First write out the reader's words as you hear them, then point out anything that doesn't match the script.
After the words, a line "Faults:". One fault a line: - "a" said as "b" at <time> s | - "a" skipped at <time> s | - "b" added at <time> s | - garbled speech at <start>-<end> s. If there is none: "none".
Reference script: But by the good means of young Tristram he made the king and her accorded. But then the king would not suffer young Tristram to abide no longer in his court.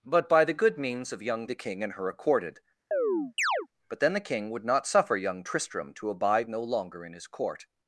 But by the good means of young The king and her accorded. But then the king would not suffer young Tristram to abide no longer in his court.
Faults:
- "Tristram he made" skipped at 1.5 s